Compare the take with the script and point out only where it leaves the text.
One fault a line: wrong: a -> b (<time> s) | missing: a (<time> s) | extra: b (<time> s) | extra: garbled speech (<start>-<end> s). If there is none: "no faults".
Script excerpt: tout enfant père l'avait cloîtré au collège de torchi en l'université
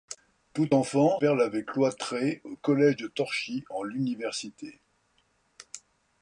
no faults